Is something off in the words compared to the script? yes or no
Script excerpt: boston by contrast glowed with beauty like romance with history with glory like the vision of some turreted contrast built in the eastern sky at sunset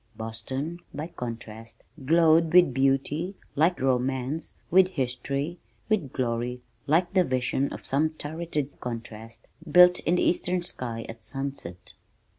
no